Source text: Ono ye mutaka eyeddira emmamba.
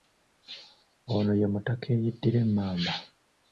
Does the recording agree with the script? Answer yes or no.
yes